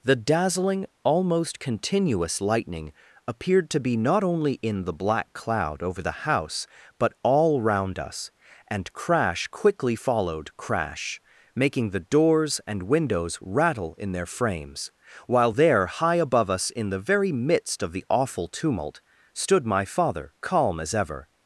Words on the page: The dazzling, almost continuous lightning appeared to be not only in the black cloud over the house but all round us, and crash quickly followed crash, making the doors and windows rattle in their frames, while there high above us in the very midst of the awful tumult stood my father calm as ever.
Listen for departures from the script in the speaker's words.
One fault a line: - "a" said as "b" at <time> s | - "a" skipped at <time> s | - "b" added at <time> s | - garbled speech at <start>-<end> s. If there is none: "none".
none